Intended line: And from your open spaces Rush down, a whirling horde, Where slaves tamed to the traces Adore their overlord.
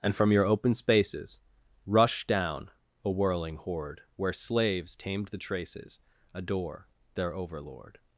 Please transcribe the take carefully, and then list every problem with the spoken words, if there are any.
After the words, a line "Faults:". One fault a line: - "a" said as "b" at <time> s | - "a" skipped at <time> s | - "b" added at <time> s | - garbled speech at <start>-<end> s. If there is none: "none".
And from your open spaces Rush down, a whirling horde, Where slaves tamed the traces Adore their overlord.
Faults:
- "to" skipped at 5.3 s